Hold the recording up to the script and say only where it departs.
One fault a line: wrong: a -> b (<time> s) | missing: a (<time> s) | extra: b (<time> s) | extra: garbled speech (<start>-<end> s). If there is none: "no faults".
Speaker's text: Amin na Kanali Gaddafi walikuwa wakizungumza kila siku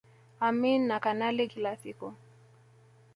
missing: Gaddafi walikuwa wakizungumza (1.5 s)